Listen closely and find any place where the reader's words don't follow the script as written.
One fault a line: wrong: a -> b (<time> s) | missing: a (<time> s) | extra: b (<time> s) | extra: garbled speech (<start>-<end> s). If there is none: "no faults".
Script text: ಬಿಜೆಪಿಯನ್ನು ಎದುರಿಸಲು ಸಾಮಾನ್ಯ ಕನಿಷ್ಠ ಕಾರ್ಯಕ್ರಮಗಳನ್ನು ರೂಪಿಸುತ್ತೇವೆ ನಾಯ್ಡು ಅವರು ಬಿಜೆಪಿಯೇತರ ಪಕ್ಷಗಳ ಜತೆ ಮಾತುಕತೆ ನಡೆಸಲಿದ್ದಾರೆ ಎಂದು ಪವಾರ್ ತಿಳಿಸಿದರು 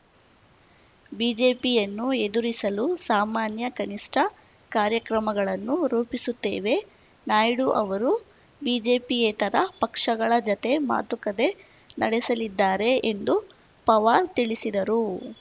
no faults